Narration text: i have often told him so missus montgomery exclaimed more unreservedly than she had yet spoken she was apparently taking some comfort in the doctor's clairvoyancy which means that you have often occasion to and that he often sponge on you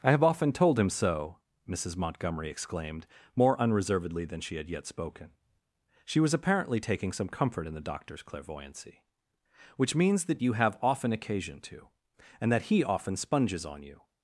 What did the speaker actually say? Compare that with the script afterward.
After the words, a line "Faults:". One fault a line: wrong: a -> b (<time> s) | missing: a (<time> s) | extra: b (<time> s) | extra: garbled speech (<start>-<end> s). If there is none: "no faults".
i have often told him so missus montgomery exclaimed more unreservedly than she had yet spoken she was apparently taking some comfort in the doctor's clairvoyancy which means that you have often occasion to and that he often sponges on you
Faults:
wrong: sponge -> sponges (13.2 s)